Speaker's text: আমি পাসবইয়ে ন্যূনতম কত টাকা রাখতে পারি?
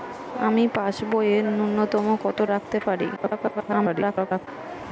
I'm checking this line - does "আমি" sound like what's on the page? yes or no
yes